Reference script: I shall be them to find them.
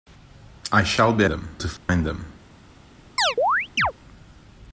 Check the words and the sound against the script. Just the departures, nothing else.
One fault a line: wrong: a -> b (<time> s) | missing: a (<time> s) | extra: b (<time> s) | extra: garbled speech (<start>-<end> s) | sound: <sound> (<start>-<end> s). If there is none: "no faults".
sound: dropout (1.8-1.9 s)
sound: chirp (3.2-3.9 s)